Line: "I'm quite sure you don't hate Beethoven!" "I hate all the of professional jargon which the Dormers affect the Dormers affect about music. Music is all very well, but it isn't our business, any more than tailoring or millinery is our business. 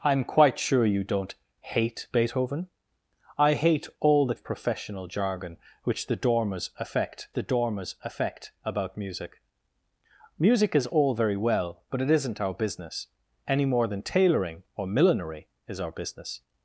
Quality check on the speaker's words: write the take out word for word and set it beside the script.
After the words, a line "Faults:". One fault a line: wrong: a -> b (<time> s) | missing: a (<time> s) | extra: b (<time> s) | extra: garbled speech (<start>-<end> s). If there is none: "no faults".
"I'm quite sure you don't hate Beethoven!" "I hate all the of professional jargon which the Dormers affect the Dormers affect about music. Music is all very well, but it isn't our business, any more than tailoring or millinery is our business.
Faults:
no faults